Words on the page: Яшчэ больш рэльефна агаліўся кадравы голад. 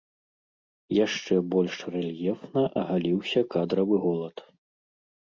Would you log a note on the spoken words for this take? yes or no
no